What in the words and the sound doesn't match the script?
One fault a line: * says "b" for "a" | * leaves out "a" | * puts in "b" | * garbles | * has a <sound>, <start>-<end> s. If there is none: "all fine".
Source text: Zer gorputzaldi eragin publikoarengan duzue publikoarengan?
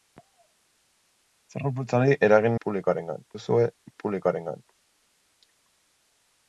all fine